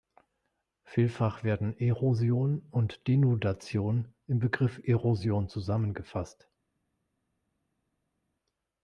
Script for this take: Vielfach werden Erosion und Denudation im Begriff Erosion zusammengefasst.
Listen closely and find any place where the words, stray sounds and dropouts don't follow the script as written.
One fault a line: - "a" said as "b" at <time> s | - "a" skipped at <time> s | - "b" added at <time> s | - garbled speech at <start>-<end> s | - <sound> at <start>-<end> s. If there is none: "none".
none